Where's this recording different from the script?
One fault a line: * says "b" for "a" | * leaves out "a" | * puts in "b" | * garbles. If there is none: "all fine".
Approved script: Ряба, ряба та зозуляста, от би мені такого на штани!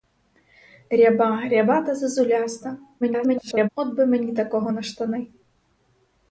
* garbles